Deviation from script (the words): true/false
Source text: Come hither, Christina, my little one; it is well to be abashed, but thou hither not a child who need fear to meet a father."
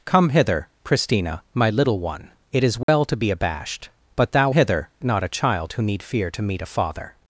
false